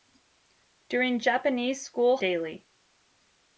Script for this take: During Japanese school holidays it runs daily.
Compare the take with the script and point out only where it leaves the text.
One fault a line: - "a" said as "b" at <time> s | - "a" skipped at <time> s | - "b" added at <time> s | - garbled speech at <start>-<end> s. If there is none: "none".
- "holidays it runs" skipped at 2.2 s